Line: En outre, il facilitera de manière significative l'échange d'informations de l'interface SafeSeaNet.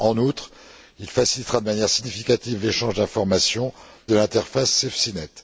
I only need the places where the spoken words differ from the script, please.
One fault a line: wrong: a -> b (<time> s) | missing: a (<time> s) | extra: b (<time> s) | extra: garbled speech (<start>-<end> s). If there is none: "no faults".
no faults